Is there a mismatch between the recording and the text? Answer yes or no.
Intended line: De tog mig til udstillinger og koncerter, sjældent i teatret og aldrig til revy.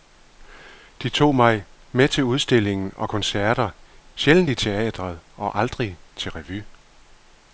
yes